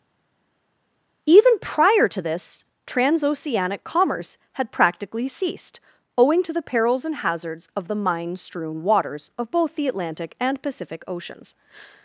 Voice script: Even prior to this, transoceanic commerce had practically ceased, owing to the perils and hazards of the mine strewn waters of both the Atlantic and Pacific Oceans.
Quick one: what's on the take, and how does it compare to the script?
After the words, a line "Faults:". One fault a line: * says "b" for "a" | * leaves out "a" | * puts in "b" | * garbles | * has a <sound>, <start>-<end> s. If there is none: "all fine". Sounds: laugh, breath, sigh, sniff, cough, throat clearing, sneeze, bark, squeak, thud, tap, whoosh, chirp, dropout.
Even prior to this, transoceanic commerce had practically ceased, owing to the perils and hazards of the mine strewn waters of both the Atlantic and Pacific Oceans.
Faults:
all fine